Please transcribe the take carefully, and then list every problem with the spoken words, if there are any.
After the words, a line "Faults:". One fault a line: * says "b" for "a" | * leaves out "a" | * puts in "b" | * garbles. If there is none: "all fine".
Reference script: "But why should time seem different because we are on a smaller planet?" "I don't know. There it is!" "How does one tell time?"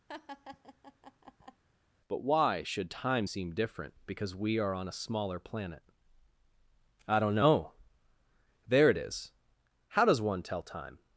"But why should time seem different because we are on a smaller planet?" "I don't know. There it is!" "How does one tell time?"
Faults:
all fine